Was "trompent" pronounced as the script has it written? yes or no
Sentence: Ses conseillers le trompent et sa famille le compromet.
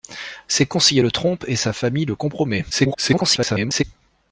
yes